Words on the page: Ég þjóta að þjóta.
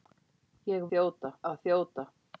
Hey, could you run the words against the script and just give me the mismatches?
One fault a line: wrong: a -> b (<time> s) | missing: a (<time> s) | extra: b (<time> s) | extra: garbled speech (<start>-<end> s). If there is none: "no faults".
no faults